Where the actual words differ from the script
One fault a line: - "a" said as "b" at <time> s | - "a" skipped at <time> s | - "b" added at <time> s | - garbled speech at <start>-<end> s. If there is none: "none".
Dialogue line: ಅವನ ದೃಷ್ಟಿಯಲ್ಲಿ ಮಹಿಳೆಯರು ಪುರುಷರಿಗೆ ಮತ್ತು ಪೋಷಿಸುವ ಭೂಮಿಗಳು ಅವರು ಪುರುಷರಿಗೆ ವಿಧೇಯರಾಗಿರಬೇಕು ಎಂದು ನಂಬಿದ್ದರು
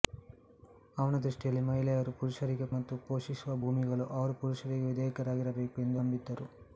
none